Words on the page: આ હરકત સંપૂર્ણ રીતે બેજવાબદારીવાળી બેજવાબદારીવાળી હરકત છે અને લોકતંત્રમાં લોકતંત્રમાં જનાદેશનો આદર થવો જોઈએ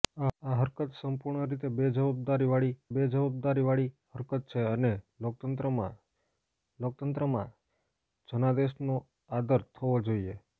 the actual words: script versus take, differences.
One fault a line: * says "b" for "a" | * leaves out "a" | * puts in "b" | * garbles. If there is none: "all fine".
all fine